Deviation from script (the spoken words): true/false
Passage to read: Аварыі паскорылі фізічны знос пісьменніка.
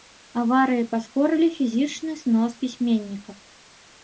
false